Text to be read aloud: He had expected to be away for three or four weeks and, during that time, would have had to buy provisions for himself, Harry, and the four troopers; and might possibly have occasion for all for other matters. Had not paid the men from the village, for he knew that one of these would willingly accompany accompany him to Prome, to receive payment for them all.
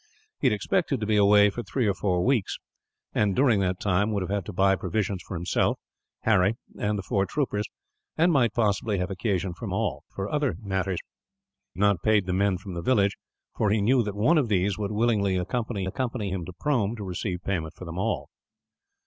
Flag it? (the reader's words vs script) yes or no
no